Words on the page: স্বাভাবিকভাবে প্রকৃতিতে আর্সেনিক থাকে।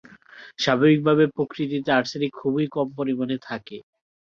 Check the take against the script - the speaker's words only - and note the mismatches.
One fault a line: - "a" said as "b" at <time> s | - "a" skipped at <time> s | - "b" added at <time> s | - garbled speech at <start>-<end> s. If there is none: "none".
- "খুবই কম পরিমাণে" added at 2.4 s